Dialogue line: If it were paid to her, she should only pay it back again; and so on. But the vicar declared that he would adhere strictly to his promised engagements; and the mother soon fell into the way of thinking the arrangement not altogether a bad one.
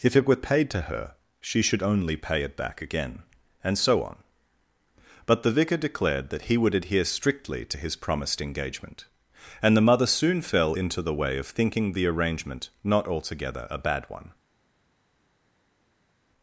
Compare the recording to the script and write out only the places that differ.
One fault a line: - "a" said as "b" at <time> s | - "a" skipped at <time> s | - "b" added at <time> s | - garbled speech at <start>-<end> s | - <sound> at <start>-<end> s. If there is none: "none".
- "engagements" said as "engagement" at 8.4 s